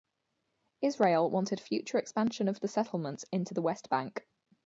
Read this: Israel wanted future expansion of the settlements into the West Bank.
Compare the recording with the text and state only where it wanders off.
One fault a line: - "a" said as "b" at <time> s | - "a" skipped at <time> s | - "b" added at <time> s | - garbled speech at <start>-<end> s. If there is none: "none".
none